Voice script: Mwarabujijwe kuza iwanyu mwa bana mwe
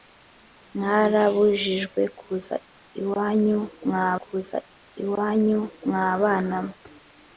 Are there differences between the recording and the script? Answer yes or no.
yes